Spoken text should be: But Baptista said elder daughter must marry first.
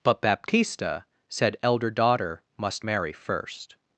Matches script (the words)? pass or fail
pass